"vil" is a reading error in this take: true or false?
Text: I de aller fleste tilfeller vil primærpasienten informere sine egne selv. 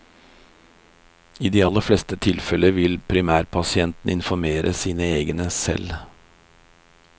false